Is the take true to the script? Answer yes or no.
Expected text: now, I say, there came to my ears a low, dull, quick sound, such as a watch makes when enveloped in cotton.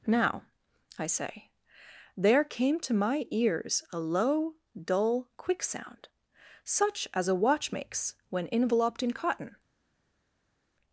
yes